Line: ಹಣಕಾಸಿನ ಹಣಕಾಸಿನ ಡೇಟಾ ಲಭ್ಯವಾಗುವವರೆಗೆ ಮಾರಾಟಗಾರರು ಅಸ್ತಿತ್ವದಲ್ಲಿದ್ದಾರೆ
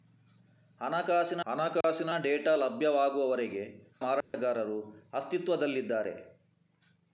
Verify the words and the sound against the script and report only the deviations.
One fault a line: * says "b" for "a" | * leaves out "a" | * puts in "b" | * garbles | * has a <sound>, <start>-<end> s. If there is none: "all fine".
* has a dropout, 1.8-1.8 s
* has a dropout, 4.2-4.3 s